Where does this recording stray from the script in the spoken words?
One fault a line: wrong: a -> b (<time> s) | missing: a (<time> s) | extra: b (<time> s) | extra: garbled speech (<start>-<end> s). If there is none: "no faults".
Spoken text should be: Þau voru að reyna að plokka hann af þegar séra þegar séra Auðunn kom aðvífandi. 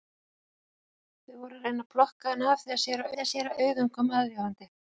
no faults